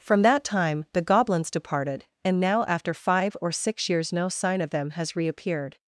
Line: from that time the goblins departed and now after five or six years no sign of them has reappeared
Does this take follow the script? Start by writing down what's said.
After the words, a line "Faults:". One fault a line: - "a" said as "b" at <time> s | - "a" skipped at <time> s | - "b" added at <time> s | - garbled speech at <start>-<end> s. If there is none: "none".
from that time the goblins departed and now after five or six years no sign of them has reappeared
Faults:
none